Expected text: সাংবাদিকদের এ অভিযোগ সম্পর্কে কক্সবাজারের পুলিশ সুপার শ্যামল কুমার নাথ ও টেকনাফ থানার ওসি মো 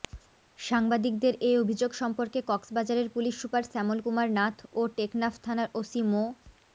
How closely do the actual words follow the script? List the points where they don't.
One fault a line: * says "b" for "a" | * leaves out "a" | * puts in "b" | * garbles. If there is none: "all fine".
all fine